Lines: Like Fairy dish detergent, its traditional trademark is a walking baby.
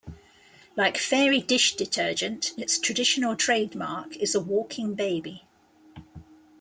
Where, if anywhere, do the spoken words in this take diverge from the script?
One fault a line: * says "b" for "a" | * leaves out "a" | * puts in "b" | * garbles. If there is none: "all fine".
all fine